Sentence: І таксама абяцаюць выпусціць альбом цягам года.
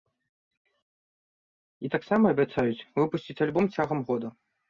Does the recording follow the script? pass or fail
pass